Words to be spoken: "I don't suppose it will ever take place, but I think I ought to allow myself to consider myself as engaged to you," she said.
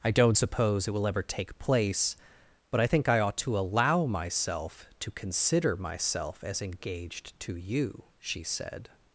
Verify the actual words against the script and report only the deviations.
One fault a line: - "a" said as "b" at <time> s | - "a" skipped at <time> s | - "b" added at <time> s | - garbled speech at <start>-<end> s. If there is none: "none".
none